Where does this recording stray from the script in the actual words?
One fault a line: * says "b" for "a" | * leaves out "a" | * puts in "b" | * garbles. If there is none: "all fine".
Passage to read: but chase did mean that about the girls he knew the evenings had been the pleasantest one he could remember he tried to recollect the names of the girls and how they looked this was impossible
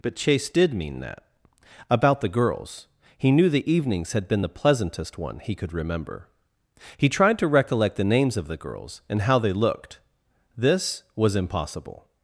all fine